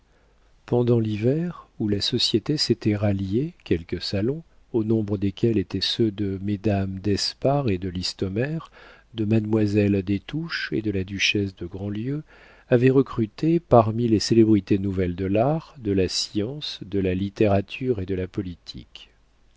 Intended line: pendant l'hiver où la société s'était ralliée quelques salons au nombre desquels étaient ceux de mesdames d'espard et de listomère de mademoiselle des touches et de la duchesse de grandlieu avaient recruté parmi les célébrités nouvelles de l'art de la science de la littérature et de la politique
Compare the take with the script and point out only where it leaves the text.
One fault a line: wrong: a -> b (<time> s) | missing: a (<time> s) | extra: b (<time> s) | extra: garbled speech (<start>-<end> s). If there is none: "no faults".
no faults